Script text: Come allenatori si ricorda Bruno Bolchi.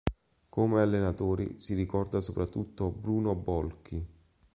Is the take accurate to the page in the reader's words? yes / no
no